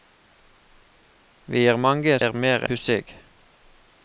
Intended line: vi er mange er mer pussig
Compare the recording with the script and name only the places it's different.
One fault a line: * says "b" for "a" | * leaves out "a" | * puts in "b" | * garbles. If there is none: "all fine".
all fine